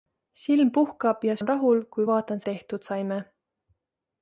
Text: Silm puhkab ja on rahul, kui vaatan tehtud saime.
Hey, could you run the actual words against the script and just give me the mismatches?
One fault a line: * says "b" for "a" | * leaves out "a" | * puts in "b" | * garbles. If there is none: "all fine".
all fine